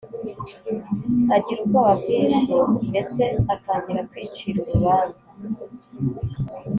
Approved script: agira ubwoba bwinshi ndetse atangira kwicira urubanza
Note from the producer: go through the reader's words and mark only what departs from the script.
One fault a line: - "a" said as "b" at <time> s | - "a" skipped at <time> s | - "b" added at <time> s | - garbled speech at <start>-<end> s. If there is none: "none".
none